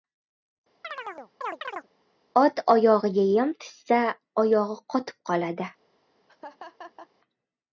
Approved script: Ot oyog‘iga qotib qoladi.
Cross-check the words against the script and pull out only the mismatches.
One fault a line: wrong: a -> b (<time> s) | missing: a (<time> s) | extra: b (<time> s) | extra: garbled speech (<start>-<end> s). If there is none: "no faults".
extra: yem tushsa oyog‘i (3.3 s)